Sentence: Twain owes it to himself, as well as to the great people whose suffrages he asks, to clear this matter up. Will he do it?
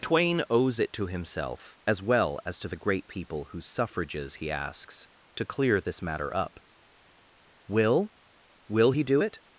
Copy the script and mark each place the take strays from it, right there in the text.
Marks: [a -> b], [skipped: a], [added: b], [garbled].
Twain owes it to himself, as well as to the great people whose suffrages he asks, to clear this matter up. Will [added: Will] he do it?